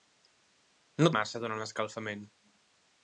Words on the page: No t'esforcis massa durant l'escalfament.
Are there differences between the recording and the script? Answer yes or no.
yes